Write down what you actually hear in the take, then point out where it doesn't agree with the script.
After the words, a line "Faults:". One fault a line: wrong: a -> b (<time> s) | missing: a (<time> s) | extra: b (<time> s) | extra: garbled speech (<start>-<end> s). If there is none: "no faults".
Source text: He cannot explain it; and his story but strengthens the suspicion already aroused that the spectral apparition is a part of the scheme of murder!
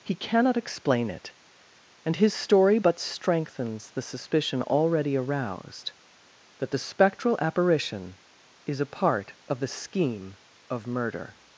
He cannot explain it; and his story but strengthens the suspicion already aroused that the spectral apparition is a part of the scheme of murder!
Faults:
no faults